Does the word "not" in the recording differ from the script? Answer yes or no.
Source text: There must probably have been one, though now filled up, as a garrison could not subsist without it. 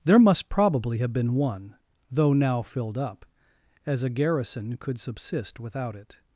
yes